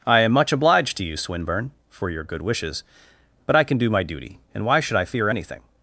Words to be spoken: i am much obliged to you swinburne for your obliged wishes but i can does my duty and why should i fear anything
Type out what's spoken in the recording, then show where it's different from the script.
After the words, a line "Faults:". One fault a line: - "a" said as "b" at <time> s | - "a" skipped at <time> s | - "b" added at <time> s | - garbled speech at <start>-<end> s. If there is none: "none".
i am much obliged to you swinburne for your good wishes but i can do my duty and why should i fear anything
Faults:
- "obliged" said as "good" at 2.2 s
- "does" said as "do" at 3.8 s